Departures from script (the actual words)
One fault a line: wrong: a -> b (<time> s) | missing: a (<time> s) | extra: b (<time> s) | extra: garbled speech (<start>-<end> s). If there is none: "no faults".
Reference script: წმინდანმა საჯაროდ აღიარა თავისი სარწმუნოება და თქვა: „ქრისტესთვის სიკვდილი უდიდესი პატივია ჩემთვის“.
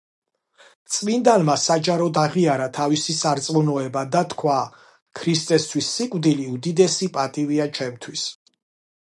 no faults